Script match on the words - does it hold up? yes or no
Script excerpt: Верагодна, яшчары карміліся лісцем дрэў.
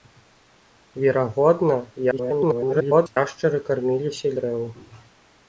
no